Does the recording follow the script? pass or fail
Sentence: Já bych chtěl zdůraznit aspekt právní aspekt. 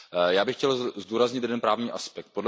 fail